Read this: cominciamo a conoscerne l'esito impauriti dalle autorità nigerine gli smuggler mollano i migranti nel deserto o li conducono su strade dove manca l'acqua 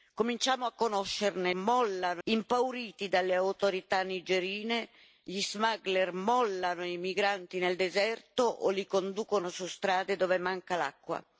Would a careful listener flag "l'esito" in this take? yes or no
yes